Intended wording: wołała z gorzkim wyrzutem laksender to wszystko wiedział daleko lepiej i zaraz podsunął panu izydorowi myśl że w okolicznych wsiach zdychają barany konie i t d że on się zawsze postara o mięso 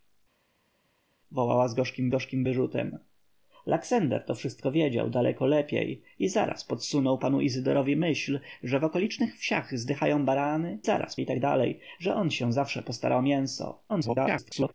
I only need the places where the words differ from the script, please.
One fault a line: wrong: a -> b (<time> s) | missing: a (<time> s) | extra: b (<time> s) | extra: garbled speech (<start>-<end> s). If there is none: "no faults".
extra: gorzkim (2.1 s)
wrong: konie -> zaraz (10.8 s)
extra: garbled speech (13.9-14.7 s)